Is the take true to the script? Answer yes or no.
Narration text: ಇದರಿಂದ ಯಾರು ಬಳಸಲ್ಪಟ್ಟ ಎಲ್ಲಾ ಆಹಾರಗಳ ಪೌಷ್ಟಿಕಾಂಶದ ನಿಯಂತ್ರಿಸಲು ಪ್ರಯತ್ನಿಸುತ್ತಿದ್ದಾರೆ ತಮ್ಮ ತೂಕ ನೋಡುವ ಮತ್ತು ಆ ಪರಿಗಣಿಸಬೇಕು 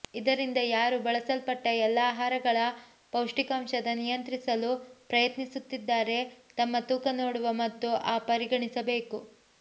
yes